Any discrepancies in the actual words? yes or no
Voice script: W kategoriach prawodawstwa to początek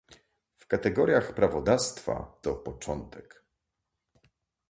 no